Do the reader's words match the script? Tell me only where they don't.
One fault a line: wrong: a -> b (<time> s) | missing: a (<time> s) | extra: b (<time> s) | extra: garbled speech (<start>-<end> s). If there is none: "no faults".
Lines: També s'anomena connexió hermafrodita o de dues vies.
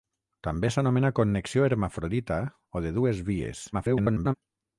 extra: garbled speech (3.7-4.3 s)